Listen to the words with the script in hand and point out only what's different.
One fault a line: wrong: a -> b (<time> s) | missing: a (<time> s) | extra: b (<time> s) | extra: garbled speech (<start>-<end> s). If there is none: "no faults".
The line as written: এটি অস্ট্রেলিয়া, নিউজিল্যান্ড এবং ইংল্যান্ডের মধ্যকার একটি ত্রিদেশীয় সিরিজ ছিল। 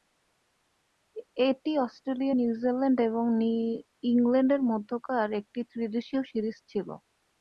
no faults